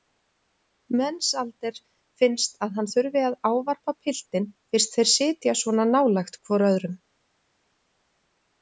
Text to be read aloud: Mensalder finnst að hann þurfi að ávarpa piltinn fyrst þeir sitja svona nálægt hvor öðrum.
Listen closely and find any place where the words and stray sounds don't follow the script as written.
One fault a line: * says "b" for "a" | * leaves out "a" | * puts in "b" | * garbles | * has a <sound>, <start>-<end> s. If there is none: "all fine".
all fine